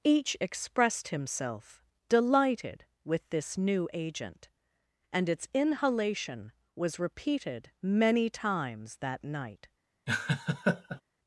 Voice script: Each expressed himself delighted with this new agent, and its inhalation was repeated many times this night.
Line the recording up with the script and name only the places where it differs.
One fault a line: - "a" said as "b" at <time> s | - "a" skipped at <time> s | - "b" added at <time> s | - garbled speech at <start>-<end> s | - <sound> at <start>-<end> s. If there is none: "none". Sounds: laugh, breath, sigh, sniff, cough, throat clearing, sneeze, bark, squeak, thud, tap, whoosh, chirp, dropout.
- "this" said as "that" at 9.0 s
- laugh at 10.1-11.0 s